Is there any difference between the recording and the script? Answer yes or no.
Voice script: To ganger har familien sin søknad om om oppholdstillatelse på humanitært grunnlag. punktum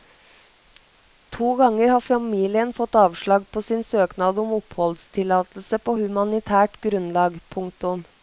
yes